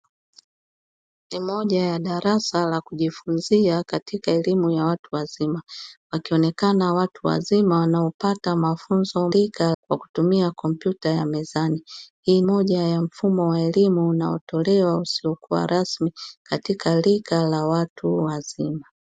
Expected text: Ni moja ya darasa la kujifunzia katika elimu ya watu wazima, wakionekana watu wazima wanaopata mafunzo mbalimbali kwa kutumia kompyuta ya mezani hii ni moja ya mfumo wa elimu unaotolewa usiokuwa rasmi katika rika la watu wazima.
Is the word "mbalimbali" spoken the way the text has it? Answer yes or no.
no